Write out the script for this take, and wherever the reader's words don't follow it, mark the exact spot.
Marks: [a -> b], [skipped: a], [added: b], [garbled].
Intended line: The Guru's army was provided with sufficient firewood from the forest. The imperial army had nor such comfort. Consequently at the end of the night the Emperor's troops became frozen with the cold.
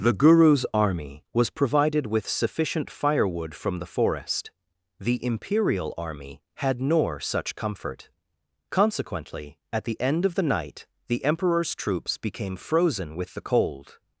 The Guru's army was provided with sufficient firewood from the forest. The imperial army had nor such comfort. Consequently at the end of the night the Emperor's troops became frozen with the cold.